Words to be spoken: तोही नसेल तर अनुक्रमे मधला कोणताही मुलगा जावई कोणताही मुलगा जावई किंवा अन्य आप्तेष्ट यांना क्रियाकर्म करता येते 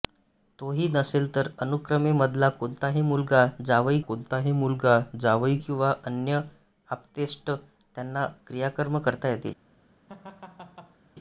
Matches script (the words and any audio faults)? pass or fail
fail